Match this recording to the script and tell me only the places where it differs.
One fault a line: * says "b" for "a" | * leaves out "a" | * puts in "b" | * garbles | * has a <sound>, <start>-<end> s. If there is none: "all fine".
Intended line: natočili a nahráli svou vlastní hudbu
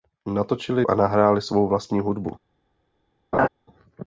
* has a laugh, 3.3-3.5 s